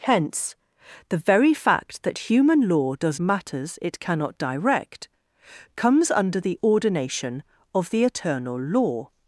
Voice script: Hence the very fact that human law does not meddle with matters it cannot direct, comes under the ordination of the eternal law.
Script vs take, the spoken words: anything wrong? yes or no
yes